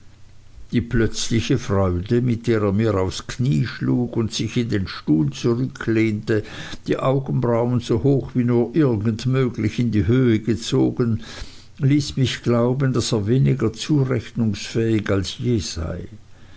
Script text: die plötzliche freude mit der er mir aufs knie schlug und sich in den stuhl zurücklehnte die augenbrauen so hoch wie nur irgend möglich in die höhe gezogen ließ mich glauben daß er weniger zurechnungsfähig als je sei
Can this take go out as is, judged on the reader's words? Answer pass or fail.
pass